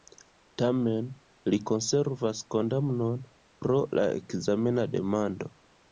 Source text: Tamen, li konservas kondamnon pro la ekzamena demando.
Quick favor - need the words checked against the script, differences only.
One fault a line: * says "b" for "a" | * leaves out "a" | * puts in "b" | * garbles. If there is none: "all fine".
all fine